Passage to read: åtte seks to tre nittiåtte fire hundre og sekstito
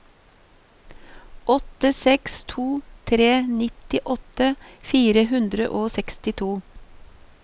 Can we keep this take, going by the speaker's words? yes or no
yes